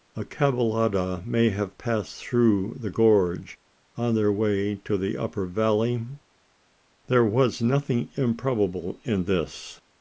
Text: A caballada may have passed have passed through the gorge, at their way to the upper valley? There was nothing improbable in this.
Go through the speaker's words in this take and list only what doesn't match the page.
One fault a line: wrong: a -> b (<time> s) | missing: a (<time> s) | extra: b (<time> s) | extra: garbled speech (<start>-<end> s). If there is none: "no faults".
missing: have passed (2.2 s)
wrong: at -> on (4.0 s)